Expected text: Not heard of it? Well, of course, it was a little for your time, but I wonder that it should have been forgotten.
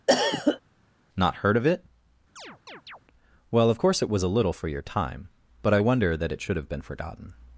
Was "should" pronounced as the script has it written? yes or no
yes